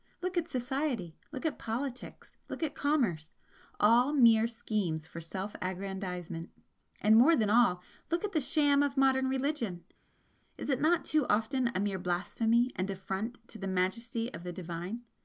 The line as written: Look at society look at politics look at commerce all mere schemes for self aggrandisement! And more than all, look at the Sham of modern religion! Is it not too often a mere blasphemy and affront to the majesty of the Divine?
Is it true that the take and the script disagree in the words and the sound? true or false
false